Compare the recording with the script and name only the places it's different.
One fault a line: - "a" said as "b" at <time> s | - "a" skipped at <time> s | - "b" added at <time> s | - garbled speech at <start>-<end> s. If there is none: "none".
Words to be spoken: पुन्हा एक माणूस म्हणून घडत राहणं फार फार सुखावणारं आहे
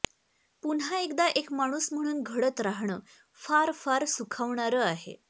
- "एकदा" added at 1.0 s